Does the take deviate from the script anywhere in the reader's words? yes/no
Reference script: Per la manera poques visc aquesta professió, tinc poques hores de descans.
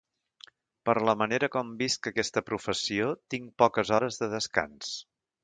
yes